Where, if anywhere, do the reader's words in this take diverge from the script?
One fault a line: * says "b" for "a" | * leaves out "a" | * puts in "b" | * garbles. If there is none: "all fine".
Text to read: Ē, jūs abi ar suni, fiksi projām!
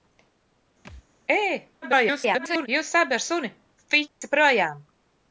* garbles